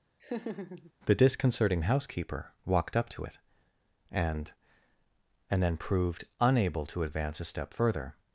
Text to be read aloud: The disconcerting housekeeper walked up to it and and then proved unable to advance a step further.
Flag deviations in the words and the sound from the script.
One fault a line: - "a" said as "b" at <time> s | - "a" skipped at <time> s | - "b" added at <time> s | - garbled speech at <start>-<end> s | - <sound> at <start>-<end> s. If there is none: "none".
- laugh at 0.2-0.9 s